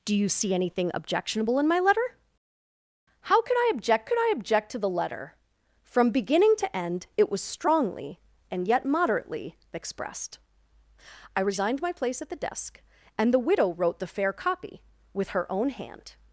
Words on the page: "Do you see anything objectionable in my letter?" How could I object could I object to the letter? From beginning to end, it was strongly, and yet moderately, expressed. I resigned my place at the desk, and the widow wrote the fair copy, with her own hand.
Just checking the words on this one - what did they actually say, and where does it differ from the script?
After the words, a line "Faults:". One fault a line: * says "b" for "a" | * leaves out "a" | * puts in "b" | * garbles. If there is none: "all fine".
"Do you see anything objectionable in my letter?" How could I object could I object to the letter? From beginning to end, it was strongly, and yet moderately, expressed. I resigned my place at the desk, and the widow wrote the fair copy, with her own hand.
Faults:
all fine